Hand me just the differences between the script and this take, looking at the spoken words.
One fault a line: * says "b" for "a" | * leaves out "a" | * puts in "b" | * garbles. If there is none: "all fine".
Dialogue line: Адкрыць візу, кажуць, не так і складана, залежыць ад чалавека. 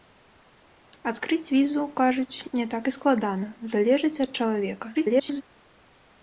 * garbles